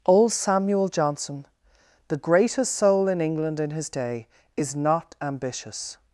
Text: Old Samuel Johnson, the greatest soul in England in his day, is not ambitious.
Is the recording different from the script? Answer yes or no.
no